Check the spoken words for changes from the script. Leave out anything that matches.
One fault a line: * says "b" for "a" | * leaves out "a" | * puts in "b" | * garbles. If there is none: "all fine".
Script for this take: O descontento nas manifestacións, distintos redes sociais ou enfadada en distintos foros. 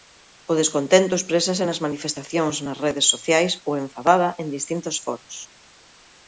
* puts in "exprésase"
* says "nas" for "distintos"